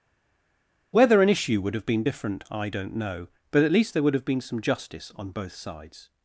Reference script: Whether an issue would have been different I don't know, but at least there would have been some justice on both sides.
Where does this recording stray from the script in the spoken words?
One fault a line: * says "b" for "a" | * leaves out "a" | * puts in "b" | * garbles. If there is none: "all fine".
all fine